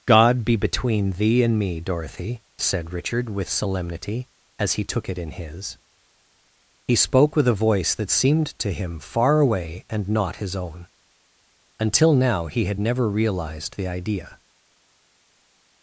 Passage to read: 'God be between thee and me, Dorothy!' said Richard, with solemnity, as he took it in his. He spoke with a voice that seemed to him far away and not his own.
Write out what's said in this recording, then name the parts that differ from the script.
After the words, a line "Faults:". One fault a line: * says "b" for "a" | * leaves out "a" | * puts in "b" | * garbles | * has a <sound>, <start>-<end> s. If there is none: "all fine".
'God be between thee and me, Dorothy!' said Richard, with solemnity, as he took it in his. He spoke with a voice that seemed to him far away and not his own. Until now he had never realized the idea
Faults:
* puts in "Until now he had never realized the idea"